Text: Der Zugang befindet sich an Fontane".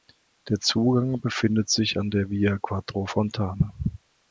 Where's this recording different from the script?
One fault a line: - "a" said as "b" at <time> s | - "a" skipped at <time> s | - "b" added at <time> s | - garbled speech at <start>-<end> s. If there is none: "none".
- "der Via Quattro" added at 2.1 s